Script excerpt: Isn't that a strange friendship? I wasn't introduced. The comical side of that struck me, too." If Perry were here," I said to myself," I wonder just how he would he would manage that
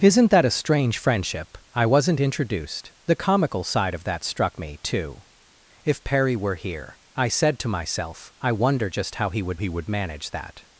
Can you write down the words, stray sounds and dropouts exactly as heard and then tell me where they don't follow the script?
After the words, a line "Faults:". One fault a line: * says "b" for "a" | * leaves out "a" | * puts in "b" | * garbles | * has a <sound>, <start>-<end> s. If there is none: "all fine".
Isn't that a strange friendship? I wasn't introduced. The comical side of that struck me, too." If Perry were here," I said to myself," I wonder just how he would he would manage that
Faults:
all fine